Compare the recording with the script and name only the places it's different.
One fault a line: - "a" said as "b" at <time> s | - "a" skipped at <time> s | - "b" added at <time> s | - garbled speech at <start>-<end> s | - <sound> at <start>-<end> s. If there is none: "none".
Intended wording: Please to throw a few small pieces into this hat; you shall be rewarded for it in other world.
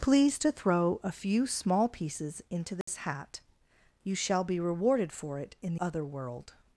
- dropout at 2.8-2.9 s